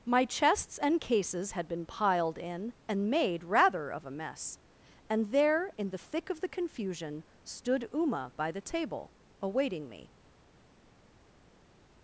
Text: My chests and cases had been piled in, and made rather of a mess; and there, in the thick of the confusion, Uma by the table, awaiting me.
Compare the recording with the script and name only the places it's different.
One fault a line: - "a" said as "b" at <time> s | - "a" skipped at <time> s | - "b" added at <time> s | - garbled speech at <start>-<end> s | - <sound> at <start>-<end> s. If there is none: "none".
- "stood" added at 7.4 s